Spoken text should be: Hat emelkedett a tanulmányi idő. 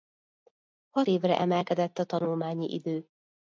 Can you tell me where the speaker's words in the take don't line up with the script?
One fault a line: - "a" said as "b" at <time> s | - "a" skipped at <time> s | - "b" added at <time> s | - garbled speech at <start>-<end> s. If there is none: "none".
- "évre" added at 1.0 s